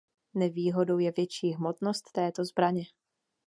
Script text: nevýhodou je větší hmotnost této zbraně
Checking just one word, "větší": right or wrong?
right